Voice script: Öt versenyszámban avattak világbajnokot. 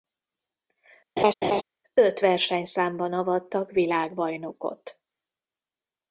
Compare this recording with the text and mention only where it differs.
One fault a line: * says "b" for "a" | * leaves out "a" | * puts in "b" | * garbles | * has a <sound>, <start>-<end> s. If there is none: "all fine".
* has a laugh, 1.2-1.6 s